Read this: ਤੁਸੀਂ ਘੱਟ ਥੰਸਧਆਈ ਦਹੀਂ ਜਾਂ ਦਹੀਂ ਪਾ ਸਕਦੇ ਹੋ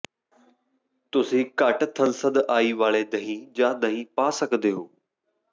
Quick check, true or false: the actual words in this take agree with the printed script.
false